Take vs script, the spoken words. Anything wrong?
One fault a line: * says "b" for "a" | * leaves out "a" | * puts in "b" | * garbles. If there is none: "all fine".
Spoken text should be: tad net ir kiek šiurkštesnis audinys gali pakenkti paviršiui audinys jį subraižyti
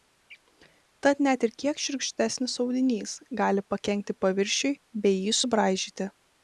* says "bei" for "audinys"